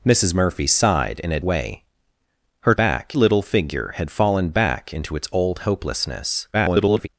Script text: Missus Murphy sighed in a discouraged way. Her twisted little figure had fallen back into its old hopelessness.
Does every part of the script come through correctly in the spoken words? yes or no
no